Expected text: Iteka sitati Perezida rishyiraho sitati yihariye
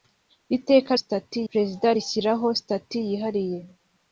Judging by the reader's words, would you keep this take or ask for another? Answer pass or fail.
pass